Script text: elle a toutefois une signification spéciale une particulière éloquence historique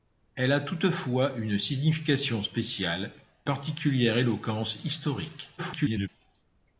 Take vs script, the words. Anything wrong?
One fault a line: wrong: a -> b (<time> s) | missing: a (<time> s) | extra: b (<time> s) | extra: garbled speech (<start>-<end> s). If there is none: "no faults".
missing: une (3.1 s)
extra: garbled speech (5.6-6.1 s)